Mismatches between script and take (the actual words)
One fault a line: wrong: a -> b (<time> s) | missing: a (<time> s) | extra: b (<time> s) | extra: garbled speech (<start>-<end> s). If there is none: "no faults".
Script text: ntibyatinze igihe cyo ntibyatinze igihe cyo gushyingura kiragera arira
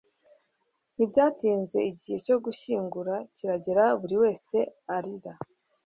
wrong: ntibyatinze igihe cyo gushyingura kiragera -> gushyingura kiragera buri wese (2.4 s)